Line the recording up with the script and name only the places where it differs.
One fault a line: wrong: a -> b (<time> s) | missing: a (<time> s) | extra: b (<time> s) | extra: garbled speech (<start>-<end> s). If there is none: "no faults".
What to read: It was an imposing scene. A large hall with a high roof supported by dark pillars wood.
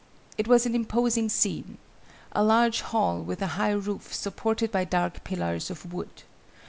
extra: of (5.7 s)